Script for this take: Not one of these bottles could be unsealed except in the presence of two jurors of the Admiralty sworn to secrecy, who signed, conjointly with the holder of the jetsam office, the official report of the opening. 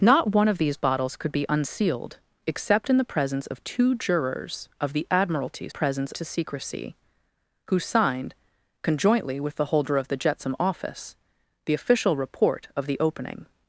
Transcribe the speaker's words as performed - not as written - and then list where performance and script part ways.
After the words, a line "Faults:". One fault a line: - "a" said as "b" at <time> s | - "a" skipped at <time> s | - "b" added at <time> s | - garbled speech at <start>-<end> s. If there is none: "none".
Not one of these bottles could be unsealed except in the presence of two jurors of the Admiralty presence to secrecy, who signed, conjointly with the holder of the jetsam office, the official report of the opening.
Faults:
- "sworn" said as "presence" at 5.7 s